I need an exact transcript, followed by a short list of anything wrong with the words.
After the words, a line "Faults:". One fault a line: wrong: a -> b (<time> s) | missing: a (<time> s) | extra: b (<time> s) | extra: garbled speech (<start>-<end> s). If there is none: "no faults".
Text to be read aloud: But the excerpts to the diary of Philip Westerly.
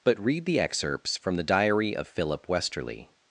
But read the excerpts from the diary of Philip Westerly.
Faults:
extra: read (0.2 s)
wrong: to -> from (1.1 s)